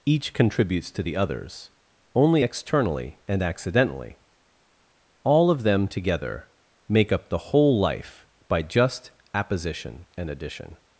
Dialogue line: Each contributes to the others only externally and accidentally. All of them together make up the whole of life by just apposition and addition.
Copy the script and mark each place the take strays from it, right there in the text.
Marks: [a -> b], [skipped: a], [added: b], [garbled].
Each contributes to the others only externally and accidentally. All of them together make up the whole [skipped: of] life by just apposition and addition.